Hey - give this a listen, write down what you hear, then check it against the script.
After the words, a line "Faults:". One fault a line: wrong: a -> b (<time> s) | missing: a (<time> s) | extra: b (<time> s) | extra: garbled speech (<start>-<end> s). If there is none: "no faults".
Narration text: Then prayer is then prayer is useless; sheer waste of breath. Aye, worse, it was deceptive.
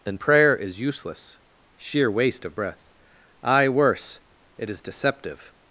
Then prayer is useless; sheer waste of breath. Aye, worse, it is deceptive.
Faults:
missing: then prayer is (0.8 s)
wrong: was -> is (4.7 s)